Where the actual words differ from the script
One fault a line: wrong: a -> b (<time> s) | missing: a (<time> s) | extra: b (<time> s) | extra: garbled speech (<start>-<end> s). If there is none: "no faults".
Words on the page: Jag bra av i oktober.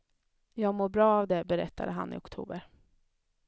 extra: mår (0.8 s)
extra: det berättade han (1.2 s)